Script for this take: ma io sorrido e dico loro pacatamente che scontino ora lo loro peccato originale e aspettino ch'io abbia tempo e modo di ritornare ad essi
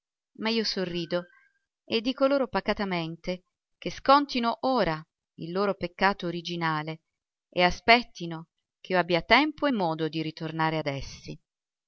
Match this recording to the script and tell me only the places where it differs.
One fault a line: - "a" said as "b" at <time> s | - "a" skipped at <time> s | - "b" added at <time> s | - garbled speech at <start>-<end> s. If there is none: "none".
- "lo" said as "il" at 5.3 s